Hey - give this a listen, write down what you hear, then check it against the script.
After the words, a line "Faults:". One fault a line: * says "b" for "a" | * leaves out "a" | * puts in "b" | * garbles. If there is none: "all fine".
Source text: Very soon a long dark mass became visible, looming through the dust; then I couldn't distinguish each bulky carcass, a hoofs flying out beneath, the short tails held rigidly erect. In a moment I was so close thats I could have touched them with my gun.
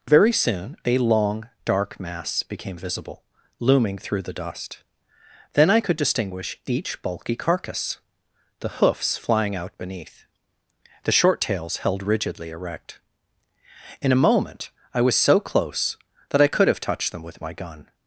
Very soon a long dark mass became visible, looming through the dust; then I could distinguish each bulky carcass, the hoofs flying out beneath, the short tails held rigidly erect. In a moment I was so close that I could have touched them with my gun.
Faults:
* says "could" for "couldn't"
* says "the" for "a"
* says "that" for "thats"